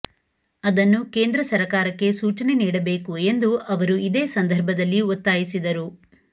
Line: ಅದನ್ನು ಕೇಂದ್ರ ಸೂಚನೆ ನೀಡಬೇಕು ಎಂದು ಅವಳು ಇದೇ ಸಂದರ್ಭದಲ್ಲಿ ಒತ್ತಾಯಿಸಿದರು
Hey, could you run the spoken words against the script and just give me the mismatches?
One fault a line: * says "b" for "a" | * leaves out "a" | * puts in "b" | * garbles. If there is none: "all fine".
* puts in "ಸರಕಾರಕ್ಕೆ"
* says "ಅವರು" for "ಅವಳು"